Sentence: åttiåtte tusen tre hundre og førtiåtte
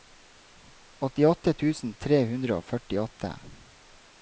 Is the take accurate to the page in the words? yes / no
yes